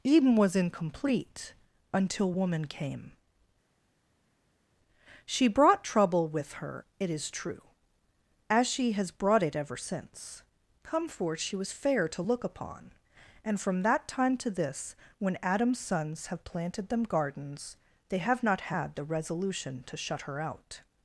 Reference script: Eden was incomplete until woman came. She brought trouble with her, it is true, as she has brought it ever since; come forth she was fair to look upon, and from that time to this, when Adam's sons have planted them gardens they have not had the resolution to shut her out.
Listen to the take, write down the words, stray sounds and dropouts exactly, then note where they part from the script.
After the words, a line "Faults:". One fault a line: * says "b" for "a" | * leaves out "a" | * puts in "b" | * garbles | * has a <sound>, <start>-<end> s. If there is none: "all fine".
Eden was incomplete until woman came. She brought trouble with her, it is true, as she has brought it ever since; come forth she was fair to look upon, and from that time to this, when Adam's sons have planted them gardens they have not had the resolution to shut her out.
Faults:
all fine